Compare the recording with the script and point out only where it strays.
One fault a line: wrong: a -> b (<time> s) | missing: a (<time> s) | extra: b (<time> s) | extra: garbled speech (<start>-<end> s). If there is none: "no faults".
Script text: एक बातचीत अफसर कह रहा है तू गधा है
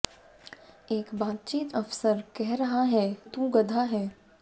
no faults